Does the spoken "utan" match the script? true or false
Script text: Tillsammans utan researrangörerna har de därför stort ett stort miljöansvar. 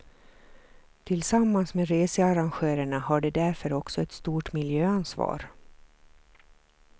false